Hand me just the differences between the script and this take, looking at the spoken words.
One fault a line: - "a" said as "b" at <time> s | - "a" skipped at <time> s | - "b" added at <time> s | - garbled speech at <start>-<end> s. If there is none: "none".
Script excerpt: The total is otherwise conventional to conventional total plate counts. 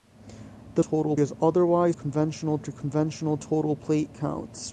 none